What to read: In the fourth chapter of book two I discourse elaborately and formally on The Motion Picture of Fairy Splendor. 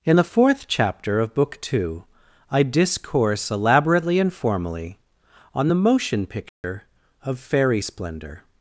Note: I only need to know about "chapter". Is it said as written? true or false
true